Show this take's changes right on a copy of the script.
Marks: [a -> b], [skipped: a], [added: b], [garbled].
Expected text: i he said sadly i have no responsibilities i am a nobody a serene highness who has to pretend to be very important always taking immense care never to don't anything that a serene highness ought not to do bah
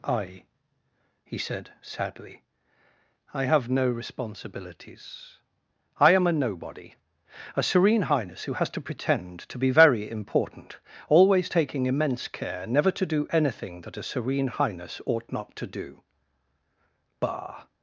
i he said sadly i have no responsibilities i am a nobody a serene highness who has to pretend to be very important always taking immense care never to [don't -> do] anything that a serene highness ought not to do bah